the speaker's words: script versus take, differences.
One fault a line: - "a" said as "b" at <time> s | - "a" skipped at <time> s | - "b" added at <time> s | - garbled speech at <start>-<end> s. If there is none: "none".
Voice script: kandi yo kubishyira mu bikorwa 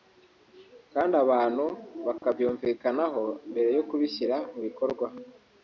- "abantu bakabyumvikanaho mbere" added at 1.2 s